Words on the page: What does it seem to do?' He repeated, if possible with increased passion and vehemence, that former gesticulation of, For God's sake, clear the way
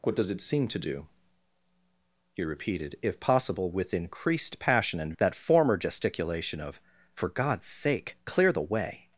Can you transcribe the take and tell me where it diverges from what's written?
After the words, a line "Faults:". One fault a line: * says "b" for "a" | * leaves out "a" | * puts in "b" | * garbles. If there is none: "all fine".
What does it seem to do?' He repeated, if possible with increased passion and that former gesticulation of, For God's sake, clear the way
Faults:
* leaves out "vehemence"